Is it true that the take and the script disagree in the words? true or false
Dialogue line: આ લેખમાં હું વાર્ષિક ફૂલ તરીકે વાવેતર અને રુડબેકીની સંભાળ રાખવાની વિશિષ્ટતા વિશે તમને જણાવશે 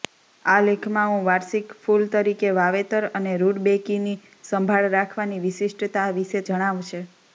true